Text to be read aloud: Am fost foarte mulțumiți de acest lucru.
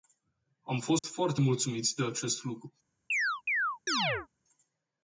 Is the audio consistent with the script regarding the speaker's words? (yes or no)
yes